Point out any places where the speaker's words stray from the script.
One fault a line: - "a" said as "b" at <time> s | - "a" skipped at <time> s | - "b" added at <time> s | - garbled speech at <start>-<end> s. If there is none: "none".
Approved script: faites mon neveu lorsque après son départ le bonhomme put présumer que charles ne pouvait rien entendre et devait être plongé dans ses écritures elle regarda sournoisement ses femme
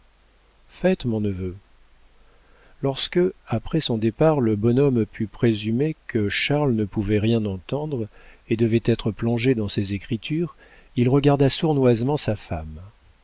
- "elle" said as "il" at 10.9 s
- "ses" said as "sa" at 12.2 s